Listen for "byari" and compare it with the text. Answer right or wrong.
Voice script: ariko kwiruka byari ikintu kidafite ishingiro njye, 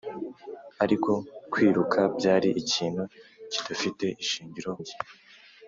right